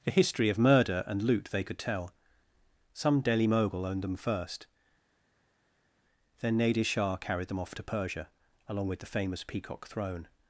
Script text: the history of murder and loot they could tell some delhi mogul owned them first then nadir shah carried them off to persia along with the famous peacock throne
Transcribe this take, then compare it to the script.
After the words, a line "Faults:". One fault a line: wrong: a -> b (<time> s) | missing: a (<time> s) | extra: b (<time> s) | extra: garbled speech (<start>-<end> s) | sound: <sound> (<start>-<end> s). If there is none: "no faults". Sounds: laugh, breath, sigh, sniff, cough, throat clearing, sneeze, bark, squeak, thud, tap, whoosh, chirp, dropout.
the history of murder and loot they could tell some delhi mogul owned them first then nadir shah carried them off to persia along with the famous peacock throne
Faults:
no faults